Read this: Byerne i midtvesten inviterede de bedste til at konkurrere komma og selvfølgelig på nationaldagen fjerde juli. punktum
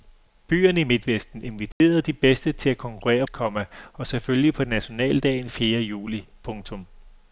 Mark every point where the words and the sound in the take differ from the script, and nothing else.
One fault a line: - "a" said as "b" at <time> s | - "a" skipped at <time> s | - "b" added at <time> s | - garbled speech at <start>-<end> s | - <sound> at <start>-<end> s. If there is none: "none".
- dropout at 1.7-1.8 s